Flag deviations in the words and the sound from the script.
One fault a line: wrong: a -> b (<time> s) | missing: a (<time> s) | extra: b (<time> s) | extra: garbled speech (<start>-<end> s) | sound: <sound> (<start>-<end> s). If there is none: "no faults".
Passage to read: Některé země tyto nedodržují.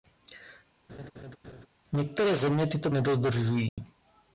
sound: laugh (0.9-1.7 s)
sound: dropout (3.7-3.8 s)